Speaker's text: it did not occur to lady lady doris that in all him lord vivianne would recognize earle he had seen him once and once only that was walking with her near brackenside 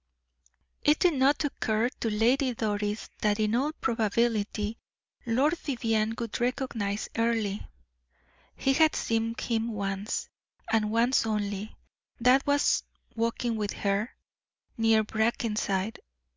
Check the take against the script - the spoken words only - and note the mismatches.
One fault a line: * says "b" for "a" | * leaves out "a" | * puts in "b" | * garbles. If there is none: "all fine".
* leaves out "lady"
* says "probability" for "him"